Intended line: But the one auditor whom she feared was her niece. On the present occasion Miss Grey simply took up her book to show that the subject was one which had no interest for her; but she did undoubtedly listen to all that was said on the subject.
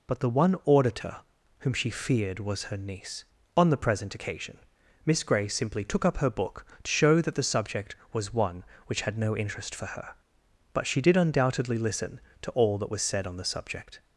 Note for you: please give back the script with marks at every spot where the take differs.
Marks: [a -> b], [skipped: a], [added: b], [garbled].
But the one auditor whom she feared was her niece. On the present occasion Miss Grey simply took up her book to show that the subject was one which had no interest for her; but she did undoubtedly listen to all that was said on the subject.